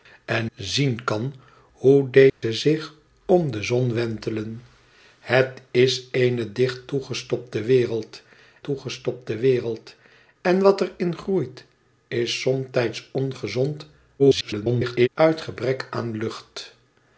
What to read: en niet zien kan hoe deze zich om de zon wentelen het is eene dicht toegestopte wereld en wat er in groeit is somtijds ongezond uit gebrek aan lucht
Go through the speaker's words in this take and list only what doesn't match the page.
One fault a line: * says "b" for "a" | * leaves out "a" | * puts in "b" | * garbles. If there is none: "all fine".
* leaves out "niet"
* puts in "toegestopte wereld"
* garbles